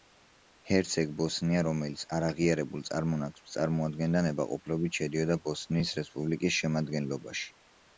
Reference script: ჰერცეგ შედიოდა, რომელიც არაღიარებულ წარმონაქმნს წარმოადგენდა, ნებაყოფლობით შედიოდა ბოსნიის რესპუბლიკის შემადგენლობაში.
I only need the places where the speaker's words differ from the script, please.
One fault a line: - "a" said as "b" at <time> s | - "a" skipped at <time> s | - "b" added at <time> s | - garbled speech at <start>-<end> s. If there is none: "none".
- "შედიოდა" said as "ბოსნია" at 1.2 s